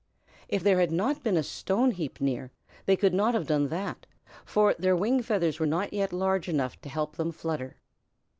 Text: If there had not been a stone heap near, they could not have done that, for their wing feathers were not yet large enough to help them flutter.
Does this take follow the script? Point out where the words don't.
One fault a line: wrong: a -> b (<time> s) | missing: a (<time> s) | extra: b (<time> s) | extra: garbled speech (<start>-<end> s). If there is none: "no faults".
no faults